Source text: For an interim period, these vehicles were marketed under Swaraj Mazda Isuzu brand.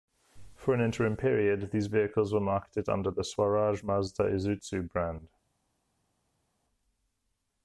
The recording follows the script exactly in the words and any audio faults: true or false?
false